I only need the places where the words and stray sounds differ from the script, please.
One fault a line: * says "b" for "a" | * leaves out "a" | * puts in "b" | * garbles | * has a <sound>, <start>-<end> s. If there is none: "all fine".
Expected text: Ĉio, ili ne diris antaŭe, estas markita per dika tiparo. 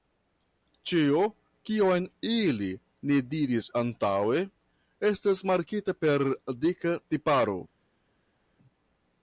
* puts in "kion"